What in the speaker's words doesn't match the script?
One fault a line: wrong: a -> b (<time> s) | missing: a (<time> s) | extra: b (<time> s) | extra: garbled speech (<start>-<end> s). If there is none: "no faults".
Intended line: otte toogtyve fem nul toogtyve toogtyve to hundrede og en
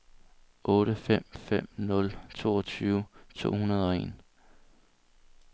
wrong: toogtyve -> fem (1.1 s)
missing: toogtyve (3.0 s)